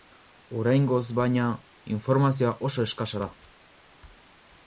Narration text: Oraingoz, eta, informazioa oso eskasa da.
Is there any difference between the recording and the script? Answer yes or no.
yes